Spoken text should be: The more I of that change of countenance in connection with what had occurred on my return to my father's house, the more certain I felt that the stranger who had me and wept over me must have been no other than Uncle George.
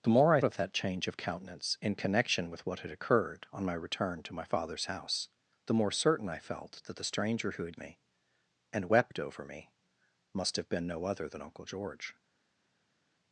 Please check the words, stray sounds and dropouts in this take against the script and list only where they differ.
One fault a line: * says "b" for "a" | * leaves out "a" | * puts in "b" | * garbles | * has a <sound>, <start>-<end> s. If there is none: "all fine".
all fine